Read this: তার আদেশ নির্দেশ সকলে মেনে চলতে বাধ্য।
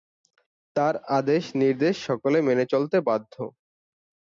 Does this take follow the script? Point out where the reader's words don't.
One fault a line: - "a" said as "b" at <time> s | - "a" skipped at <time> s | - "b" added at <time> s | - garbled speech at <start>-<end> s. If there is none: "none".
none